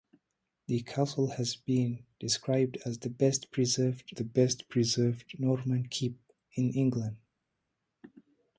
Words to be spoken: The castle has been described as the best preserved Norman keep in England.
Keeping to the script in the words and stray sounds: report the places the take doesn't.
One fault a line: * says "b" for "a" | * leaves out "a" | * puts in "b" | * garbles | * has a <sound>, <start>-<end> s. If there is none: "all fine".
* puts in "the best preserved"